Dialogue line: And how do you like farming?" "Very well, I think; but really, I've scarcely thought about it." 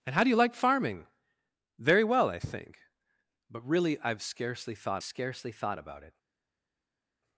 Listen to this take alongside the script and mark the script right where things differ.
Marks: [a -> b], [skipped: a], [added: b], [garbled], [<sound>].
And how do you like farming?" "Very well, I think; but really, I've scarcely thought [added: scarcely thought] about it."